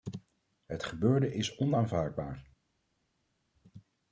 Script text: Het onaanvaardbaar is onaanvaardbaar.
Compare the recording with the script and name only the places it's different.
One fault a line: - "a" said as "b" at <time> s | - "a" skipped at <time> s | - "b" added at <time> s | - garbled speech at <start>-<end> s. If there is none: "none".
- "onaanvaardbaar" said as "gebeurde" at 0.8 s